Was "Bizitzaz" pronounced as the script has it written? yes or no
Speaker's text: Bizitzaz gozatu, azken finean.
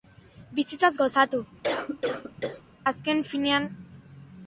yes